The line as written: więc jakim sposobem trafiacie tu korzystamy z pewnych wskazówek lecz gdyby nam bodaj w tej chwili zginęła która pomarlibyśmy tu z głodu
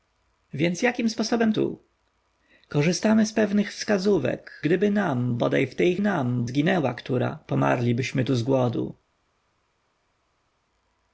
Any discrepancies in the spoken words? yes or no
yes